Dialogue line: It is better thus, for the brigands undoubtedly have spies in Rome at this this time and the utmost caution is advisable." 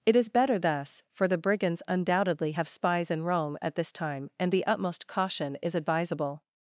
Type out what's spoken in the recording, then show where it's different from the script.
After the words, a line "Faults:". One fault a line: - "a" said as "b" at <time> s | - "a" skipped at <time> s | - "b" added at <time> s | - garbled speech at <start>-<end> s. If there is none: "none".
It is better thus, for the brigands undoubtedly have spies in Rome at this time and the utmost caution is advisable."
Faults:
- "this" skipped at 3.9 s